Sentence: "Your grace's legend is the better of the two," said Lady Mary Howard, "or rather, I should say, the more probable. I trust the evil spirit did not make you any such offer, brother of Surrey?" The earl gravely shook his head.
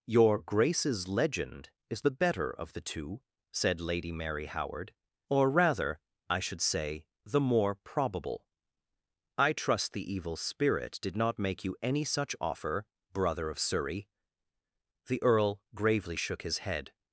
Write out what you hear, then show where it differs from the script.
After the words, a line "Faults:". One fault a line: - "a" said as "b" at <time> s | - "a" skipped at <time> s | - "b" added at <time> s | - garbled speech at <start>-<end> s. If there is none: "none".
"Your grace's legend is the better of the two," said Lady Mary Howard, "or rather, I should say, the more probable. I trust the evil spirit did not make you any such offer, brother of Surrey?" The earl gravely shook his head.
Faults:
none